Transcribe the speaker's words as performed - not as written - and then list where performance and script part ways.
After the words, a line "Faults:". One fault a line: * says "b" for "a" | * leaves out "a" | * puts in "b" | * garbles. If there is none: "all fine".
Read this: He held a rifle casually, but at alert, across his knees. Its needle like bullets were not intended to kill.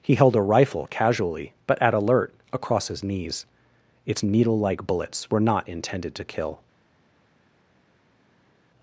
He held a rifle casually, but at alert, across his knees. Its needle like bullets were not intended to kill.
Faults:
all fine